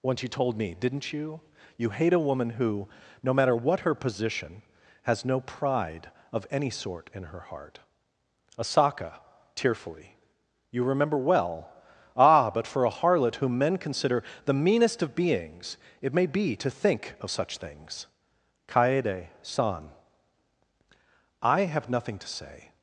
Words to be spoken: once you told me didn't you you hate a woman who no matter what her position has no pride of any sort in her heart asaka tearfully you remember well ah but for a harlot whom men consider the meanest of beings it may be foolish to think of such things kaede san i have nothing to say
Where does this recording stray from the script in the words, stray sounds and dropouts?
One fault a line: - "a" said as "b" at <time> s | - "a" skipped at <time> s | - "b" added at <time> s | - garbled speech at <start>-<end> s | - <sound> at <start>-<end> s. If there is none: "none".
- "foolish" skipped at 16.6 s